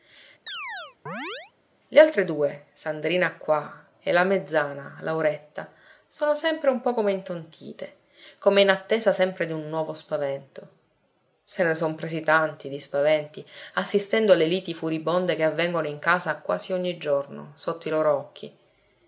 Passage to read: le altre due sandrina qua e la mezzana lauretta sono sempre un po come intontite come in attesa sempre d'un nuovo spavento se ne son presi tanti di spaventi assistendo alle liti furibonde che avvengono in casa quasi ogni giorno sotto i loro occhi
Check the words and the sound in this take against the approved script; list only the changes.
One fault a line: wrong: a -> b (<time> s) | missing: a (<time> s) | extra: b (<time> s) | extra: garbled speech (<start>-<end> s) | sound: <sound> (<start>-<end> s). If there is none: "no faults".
sound: chirp (0.5-1.5 s)